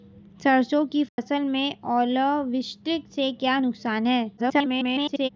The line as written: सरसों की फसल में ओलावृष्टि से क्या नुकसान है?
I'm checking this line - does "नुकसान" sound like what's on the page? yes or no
yes